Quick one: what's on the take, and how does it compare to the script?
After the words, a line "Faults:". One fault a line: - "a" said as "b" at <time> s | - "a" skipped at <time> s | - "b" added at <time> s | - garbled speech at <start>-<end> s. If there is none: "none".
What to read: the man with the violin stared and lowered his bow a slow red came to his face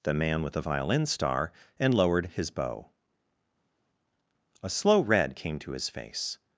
the man with the violin star and lowered his bow a slow red came to his face
Faults:
- "stared" said as "star" at 1.1 s